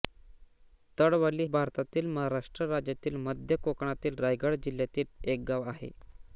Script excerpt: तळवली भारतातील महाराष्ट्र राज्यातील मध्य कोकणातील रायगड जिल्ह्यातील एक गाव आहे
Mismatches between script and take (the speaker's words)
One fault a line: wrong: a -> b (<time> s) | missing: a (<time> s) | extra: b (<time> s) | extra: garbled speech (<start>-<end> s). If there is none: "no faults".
no faults